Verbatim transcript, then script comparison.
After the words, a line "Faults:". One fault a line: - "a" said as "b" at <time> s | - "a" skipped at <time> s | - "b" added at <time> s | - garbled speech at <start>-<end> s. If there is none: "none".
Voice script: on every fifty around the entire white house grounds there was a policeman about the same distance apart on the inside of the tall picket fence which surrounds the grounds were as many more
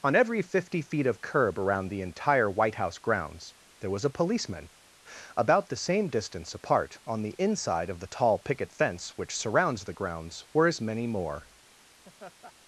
on every fifty feet of curb around the entire white house grounds there was a policeman about the same distance apart on the inside of the tall picket fence which surrounds the grounds were as many more
Faults:
- "feet of curb" added at 0.8 s